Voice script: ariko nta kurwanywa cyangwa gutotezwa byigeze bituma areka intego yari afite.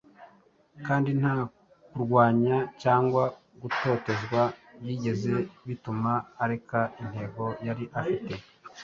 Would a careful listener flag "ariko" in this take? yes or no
yes